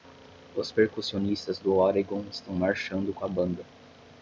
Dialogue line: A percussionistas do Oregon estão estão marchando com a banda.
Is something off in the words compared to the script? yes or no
yes